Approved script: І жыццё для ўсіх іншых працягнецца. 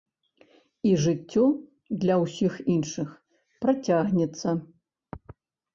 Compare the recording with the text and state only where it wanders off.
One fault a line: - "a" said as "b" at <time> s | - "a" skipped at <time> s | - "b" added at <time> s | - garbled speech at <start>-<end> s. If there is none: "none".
none